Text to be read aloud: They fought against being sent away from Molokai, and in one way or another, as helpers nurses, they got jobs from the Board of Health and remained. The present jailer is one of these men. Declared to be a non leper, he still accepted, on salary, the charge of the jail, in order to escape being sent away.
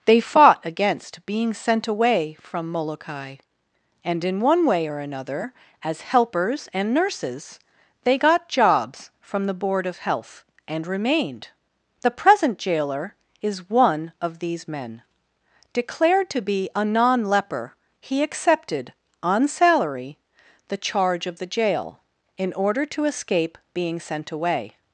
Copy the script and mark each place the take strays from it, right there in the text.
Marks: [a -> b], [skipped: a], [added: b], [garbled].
They fought against being sent away from Molokai, and in one way or another, as helpers [added: and] nurses, they got jobs from the Board of Health and remained. The present jailer is one of these men. Declared to be a non leper, he [skipped: still] accepted, on salary, the charge of the jail, in order to escape being sent away.